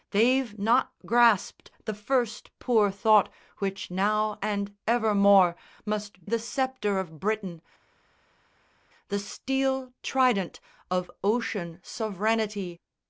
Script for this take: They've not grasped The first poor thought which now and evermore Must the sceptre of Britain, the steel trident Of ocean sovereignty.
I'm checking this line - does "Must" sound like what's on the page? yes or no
yes